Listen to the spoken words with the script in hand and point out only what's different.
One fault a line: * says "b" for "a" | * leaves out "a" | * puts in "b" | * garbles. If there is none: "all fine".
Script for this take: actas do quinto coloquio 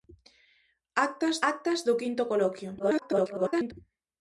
* puts in "actas"
* garbles